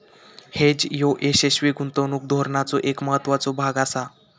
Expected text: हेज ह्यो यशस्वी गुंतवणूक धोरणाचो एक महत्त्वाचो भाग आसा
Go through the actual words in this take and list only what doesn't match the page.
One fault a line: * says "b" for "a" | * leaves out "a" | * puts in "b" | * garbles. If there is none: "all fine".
all fine